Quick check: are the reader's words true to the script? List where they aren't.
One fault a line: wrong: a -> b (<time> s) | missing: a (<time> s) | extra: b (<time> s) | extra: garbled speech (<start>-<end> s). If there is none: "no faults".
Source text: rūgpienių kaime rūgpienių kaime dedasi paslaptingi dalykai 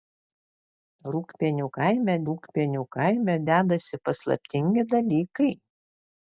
no faults